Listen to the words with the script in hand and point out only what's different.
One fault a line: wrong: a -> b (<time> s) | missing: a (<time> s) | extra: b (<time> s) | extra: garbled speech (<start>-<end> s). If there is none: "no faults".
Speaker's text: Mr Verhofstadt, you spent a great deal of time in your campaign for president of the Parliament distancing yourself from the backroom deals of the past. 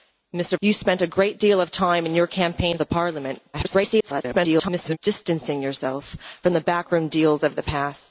missing: Verhofstadt (0.6 s)
missing: for president of (2.8 s)
extra: garbled speech (3.5-5.0 s)